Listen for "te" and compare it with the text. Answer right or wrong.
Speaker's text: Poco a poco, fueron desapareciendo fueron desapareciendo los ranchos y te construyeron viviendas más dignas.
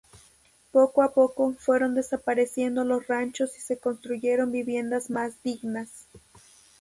wrong